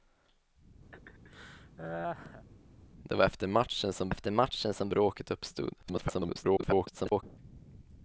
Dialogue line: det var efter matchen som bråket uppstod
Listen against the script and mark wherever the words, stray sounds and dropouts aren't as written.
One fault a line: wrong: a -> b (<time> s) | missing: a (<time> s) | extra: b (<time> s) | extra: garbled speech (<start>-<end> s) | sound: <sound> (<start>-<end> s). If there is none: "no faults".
sound: laugh (0.9-2.5 s)
extra: efter matchen som (4.1 s)
extra: garbled speech (5.8-7.2 s)